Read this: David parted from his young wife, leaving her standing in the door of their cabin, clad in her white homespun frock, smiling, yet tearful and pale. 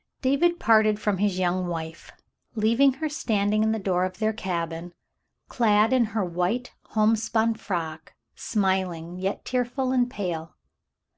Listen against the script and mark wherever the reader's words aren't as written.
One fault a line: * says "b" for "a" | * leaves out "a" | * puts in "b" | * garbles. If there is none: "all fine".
all fine